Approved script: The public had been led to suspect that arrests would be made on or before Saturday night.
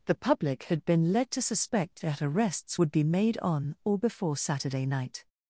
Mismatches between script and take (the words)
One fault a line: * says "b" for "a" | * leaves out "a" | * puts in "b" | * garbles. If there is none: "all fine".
all fine